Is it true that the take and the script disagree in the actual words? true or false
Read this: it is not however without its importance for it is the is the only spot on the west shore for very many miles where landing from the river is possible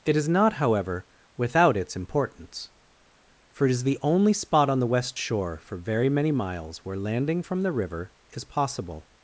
true